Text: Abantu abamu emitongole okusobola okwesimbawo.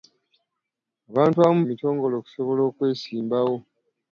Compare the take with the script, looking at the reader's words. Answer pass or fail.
pass